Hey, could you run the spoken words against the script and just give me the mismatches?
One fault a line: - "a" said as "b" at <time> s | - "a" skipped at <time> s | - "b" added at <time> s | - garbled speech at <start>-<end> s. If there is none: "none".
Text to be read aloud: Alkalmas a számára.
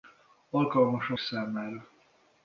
none